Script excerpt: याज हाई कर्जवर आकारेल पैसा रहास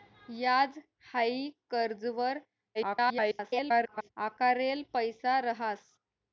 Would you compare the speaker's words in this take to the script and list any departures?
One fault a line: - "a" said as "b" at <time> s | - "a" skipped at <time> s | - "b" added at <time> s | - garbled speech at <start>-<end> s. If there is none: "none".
- garbled speech at 2.7-4.1 s